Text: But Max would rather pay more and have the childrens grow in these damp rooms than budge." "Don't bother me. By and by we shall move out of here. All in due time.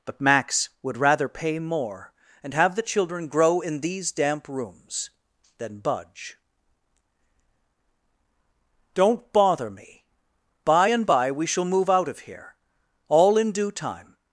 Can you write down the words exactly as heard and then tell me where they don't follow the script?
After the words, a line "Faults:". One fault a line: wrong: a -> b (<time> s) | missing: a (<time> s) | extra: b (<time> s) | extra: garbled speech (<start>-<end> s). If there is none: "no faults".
But Max would rather pay more and have the children grow in these damp rooms than budge." "Don't bother me. By and by we shall move out of here. All in due time.
Faults:
wrong: childrens -> children (2.8 s)